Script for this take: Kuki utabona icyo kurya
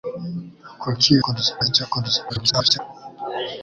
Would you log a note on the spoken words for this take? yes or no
yes